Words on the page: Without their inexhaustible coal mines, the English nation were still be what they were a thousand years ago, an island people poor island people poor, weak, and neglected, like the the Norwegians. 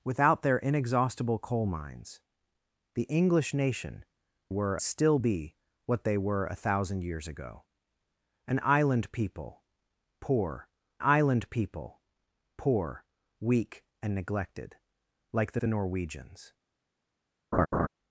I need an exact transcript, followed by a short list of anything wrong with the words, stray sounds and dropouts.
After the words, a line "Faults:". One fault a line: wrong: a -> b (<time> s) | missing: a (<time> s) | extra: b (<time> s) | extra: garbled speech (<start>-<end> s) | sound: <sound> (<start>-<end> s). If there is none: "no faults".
Without their inexhaustible coal mines, the English nation were still be what they were a thousand years ago, an island people poor island people poor, weak, and neglected, like the the Norwegians.
Faults:
sound: laugh (17.5-17.9 s)